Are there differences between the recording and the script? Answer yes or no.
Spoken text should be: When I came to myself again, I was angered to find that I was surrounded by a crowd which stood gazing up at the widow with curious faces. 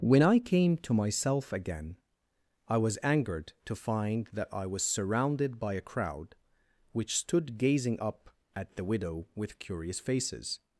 no